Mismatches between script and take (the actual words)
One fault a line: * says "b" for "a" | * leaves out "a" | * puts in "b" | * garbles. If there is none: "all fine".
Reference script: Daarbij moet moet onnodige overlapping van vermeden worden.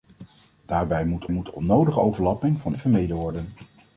all fine